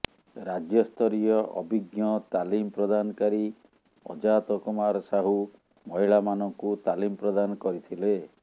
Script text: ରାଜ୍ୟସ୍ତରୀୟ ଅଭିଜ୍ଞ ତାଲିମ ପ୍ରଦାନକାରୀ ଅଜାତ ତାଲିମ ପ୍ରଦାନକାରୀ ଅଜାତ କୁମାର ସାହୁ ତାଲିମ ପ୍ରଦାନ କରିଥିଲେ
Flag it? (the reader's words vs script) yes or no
yes